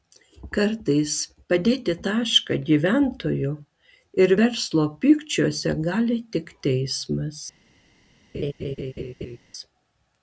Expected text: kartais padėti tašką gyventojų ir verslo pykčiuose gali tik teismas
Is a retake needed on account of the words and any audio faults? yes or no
yes